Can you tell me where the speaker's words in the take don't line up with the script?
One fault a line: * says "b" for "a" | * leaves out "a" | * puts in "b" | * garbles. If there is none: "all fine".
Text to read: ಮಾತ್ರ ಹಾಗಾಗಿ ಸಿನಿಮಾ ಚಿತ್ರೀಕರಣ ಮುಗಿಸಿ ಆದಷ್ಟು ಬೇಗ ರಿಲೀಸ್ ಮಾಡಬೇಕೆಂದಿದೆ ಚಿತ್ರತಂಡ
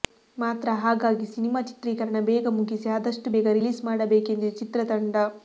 * puts in "ಬೇಗ"